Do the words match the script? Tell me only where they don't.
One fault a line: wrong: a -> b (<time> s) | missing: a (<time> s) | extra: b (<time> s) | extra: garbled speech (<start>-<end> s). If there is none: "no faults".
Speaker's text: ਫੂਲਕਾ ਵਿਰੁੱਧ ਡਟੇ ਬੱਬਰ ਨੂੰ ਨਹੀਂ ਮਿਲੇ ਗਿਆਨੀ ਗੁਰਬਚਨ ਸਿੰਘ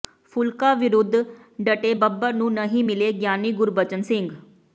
no faults